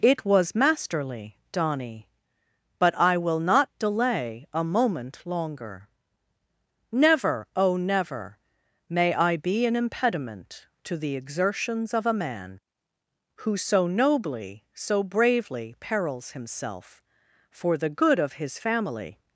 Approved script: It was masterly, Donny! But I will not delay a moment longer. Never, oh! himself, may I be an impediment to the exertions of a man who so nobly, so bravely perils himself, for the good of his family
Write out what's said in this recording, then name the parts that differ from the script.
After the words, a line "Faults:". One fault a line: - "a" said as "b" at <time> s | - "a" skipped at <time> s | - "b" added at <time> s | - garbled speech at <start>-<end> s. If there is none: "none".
It was masterly, Donny! But I will not delay a moment longer. Never, oh! never, may I be an impediment to the exertions of a man who so nobly, so bravely perils himself, for the good of his family
Faults:
- "himself" said as "never" at 7.8 s